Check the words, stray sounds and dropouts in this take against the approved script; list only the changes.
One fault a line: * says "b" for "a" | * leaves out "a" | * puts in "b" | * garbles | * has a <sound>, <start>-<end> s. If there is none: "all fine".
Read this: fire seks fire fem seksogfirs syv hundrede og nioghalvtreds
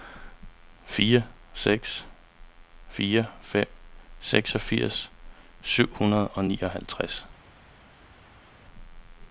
all fine